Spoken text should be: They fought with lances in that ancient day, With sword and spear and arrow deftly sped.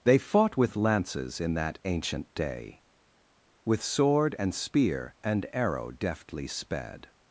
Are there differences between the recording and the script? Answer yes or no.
no